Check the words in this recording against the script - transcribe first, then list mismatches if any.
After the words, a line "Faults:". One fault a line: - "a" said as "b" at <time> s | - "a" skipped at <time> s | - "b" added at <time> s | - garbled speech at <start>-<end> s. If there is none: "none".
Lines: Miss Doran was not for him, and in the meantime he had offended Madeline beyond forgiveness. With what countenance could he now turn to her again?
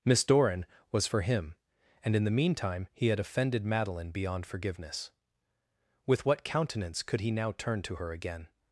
Miss Doran was for him, and in the meantime he had offended Madeline beyond forgiveness. With what countenance could he now turn to her again?
Faults:
- "not" skipped at 1.1 s